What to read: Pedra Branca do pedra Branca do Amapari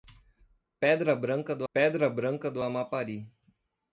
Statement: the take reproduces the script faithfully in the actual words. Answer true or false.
true